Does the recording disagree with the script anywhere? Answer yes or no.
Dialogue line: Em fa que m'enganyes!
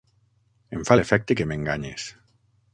yes